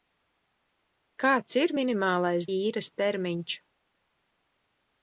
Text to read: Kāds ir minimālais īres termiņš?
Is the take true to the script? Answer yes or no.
yes